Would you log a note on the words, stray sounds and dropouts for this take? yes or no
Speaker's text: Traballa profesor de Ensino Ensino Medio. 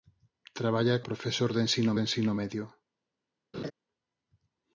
yes